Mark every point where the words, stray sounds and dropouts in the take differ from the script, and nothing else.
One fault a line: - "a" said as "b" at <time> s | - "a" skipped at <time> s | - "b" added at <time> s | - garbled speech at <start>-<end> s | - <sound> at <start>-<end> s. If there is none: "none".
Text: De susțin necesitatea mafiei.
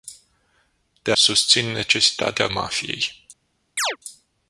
- chirp at 3.8-4.0 s